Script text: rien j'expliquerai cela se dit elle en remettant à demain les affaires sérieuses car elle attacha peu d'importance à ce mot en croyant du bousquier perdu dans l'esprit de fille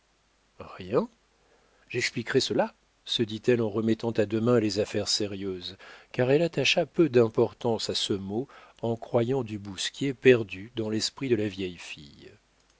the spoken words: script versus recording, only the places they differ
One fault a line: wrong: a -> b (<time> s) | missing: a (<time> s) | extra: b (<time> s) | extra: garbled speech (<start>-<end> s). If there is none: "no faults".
extra: la vieille (11.3 s)